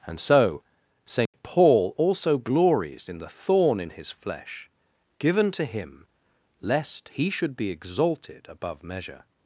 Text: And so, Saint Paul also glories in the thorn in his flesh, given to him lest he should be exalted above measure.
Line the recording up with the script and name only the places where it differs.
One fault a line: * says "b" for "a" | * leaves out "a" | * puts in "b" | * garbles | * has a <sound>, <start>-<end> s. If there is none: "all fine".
* has a dropout, 1.3-1.3 s